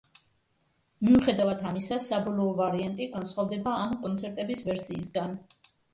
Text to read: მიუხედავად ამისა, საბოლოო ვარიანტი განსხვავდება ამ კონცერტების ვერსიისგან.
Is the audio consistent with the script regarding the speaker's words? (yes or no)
yes